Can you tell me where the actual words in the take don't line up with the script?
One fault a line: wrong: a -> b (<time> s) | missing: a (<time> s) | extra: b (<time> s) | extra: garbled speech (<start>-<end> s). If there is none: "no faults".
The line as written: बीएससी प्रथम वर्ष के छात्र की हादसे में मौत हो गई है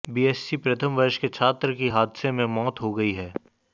no faults